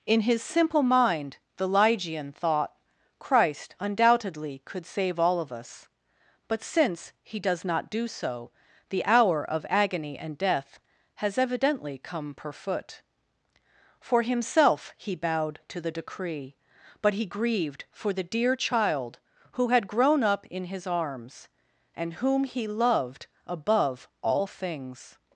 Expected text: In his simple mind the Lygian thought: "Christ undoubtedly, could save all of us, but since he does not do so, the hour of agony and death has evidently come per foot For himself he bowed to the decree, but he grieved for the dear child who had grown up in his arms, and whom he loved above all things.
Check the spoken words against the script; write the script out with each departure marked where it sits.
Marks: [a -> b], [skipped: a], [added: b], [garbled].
In his simple mind the Lygian thought: "Christ undoubtedly, could save all of us, but since he does not do so, the hour of agony and death has evidently come per foot For himself he bowed to the decree, but he grieved for the dear child who had grown up in his arms, and whom he loved above all things.